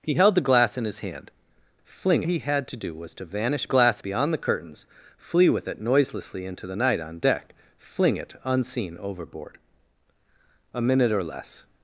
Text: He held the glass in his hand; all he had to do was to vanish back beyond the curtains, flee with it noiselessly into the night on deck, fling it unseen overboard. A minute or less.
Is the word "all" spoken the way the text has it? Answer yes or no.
no